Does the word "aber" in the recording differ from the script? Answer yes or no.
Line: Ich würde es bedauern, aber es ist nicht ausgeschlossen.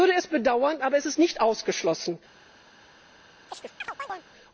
no